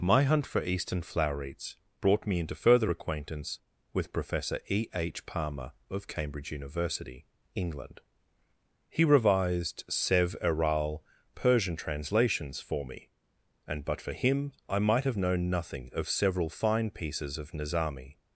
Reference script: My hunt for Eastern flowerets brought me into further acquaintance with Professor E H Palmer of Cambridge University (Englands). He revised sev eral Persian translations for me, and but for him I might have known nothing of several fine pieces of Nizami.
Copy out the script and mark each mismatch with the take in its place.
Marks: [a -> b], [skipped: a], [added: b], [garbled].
My hunt for Eastern flowerets brought me into further acquaintance with Professor E H Palmer of Cambridge University [(Englands). -> England] He revised sev eral Persian translations for me, and but for him I might have known nothing of several fine pieces of Nizami.